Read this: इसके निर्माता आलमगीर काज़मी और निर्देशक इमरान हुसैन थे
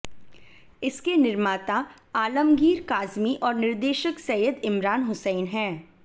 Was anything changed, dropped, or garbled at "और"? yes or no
no